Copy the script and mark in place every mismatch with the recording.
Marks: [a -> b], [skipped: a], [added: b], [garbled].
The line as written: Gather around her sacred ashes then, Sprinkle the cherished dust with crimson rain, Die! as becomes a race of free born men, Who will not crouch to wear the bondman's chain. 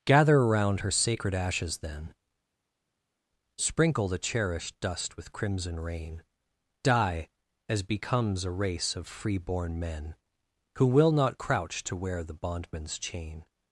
Gather around her sacred ashes then, Sprinkle the cherished dust with crimson rain, Die! as becomes a race of free born men, Who will not crouch to wear the bondman's chain.